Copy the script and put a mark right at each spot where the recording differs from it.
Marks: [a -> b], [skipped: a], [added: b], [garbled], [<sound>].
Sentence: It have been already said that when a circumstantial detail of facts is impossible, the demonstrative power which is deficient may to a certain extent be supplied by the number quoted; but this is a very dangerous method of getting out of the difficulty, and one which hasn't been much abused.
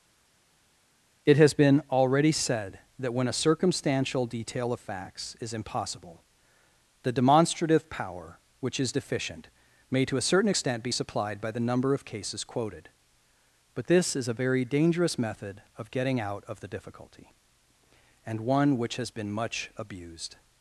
It [have -> has] been already said that when a circumstantial detail of facts is impossible, the demonstrative power which is deficient may to a certain extent be supplied by the number [added: of cases] quoted; but this is a very dangerous method of getting out of the difficulty, and one which [hasn't -> has] been much abused.